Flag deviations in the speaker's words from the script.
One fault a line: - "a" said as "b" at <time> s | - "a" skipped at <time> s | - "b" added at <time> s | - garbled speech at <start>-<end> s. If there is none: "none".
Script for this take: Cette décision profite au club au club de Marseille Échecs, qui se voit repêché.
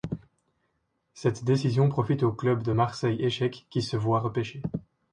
- "au club" skipped at 2.6 s